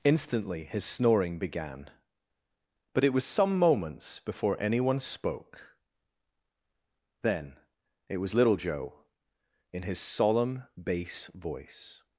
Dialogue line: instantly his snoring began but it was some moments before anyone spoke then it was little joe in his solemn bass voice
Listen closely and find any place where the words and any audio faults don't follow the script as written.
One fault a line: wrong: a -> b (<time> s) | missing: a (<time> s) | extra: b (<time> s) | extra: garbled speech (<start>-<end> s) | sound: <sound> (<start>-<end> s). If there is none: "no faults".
no faults